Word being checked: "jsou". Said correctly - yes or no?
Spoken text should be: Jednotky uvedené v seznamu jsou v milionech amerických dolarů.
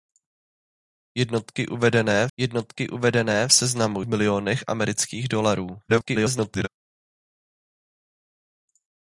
no